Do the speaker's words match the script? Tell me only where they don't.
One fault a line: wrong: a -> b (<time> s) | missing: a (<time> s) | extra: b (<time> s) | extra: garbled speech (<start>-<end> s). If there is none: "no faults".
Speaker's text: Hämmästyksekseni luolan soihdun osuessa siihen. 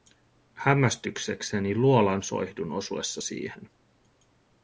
no faults